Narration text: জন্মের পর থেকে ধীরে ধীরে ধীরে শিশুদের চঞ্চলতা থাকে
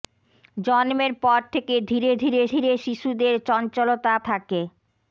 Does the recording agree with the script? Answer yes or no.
yes